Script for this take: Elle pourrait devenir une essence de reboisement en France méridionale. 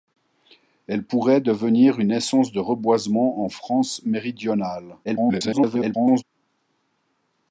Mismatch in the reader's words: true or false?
true